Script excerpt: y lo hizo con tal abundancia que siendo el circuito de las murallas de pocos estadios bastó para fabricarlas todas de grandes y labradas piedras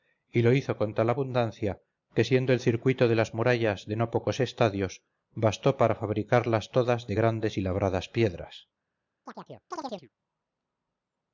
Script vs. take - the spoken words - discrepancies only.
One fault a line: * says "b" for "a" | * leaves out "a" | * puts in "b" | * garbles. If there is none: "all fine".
* puts in "no"